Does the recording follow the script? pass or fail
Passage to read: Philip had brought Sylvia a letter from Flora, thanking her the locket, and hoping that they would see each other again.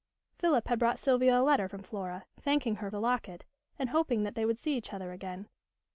pass